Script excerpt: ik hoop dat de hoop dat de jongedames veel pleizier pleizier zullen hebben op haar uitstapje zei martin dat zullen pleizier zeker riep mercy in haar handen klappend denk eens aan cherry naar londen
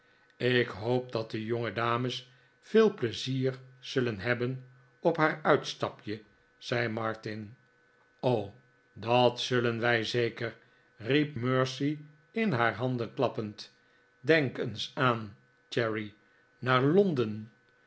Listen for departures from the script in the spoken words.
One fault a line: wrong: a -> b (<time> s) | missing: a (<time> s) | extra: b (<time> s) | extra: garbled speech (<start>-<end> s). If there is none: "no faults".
missing: hoop dat de (1.4 s)
missing: pleizier (3.6 s)
wrong: pleizier -> wij (9.8 s)